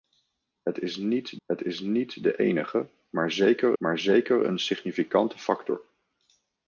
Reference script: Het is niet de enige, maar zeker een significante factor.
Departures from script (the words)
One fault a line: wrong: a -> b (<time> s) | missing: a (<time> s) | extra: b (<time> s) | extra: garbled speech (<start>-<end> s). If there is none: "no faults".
extra: het is niet (1.5 s)
extra: maar zeker (3.8 s)